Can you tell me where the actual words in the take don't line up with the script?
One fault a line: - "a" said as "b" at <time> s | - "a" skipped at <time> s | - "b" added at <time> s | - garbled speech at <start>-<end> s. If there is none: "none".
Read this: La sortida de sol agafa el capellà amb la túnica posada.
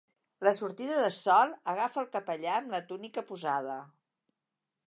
none